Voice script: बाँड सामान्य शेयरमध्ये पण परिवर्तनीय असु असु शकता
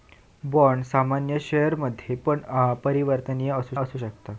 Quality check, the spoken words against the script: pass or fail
pass